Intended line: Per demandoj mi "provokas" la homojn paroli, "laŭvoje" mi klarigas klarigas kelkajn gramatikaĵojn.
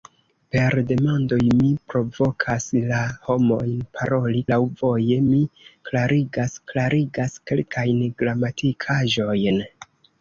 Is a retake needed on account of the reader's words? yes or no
no